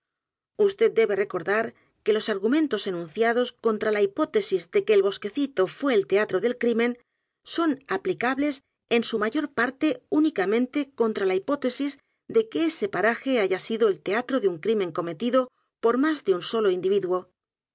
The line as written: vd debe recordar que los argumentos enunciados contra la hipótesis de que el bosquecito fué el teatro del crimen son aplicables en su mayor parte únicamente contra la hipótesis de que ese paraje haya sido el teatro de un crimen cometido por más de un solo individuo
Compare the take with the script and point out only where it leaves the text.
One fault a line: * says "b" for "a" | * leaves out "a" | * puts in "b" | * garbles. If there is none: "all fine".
all fine